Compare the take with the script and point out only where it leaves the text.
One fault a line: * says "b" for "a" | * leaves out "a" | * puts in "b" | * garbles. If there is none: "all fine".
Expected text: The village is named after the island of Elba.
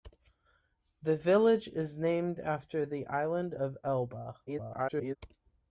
* garbles